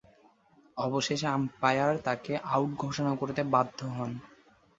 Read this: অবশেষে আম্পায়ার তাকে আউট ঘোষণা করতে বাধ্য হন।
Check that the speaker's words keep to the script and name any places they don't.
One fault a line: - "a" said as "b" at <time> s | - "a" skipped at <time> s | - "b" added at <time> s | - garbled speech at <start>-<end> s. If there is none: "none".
none